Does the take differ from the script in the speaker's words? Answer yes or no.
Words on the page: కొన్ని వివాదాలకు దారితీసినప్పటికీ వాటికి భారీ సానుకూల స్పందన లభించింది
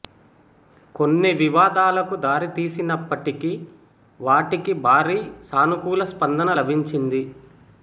no